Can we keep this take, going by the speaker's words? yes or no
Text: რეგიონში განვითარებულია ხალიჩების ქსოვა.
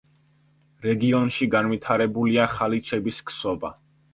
yes